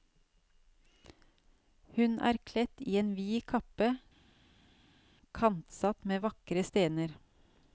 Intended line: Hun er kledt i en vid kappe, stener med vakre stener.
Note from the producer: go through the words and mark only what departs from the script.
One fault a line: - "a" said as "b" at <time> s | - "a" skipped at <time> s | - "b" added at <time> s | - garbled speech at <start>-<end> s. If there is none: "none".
- "stener" said as "kantsatt" at 5.4 s